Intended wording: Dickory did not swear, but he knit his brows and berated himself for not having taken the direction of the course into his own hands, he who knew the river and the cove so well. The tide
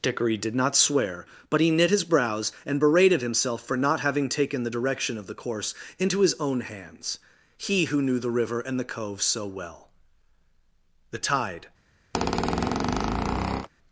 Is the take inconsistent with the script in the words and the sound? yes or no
yes